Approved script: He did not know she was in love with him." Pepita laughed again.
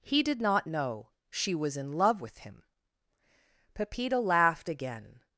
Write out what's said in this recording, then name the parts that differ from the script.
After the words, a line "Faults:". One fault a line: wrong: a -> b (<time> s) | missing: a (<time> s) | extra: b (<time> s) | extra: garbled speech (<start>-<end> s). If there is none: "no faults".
He did not know she was in love with him." Pepita laughed again.
Faults:
no faults